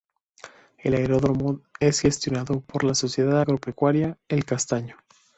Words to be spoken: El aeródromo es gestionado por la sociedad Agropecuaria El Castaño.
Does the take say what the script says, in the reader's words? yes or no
yes